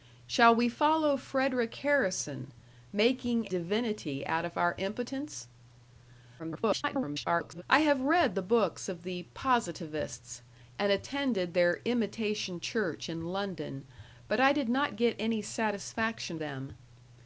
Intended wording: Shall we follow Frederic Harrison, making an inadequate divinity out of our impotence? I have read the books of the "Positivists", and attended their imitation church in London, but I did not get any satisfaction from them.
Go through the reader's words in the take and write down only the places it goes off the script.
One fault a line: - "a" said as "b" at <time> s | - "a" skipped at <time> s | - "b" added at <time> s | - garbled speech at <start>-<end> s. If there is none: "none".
- "an inadequate" skipped at 3.5 s
- garbled speech at 6.4-7.6 s
- "from" skipped at 16.4 s